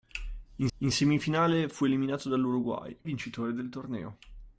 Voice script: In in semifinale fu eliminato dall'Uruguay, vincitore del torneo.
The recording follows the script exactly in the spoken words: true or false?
true